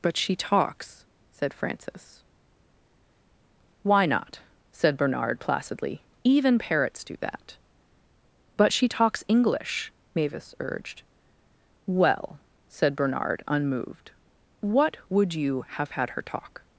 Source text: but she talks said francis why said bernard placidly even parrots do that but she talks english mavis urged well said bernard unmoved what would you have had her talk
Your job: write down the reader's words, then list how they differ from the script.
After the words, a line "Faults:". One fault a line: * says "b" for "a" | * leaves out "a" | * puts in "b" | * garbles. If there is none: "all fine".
but she talks said francis why not said bernard placidly even parrots do that but she talks english mavis urged well said bernard unmoved what would you have had her talk
Faults:
* puts in "not"